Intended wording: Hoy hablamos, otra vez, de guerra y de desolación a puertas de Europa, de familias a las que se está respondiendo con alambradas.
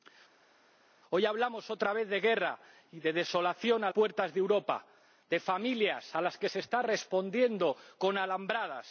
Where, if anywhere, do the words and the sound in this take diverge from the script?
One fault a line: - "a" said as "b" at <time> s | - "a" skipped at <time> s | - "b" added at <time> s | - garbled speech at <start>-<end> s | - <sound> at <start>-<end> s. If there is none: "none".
none